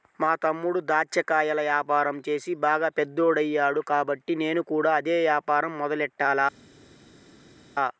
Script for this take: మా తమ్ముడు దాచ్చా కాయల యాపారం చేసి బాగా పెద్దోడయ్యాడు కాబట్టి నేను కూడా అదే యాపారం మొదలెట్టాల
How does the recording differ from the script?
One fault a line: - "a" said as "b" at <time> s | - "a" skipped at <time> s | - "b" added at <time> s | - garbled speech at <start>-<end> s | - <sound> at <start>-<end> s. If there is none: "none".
none